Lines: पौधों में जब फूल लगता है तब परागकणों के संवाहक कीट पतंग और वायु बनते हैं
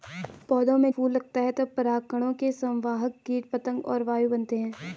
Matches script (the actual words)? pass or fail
fail